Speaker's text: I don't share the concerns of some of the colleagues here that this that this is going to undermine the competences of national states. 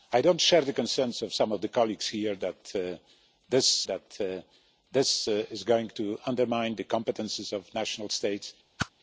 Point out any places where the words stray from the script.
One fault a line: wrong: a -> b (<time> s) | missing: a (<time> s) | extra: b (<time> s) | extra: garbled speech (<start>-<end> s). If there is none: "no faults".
no faults